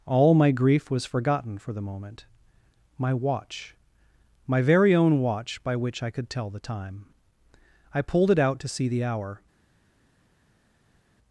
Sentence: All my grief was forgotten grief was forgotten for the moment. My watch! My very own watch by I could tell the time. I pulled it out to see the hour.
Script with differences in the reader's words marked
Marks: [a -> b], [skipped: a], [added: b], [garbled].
All my grief was forgotten [skipped: grief was forgotten] for the moment. My watch! My very own watch by [added: which] I could tell the time. I pulled it out to see the hour.